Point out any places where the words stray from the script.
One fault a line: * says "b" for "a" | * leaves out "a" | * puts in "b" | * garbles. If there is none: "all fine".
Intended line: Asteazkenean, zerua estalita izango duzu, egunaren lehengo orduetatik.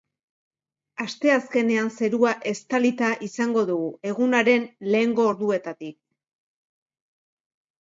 * says "dugu" for "duzu"